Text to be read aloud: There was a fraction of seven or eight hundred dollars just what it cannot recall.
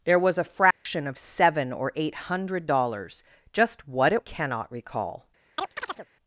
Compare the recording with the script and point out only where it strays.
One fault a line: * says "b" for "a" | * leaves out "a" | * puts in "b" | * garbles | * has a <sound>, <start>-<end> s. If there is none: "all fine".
* has a dropout, 0.7-0.9 s
* has a chirp, 5.6-6.1 s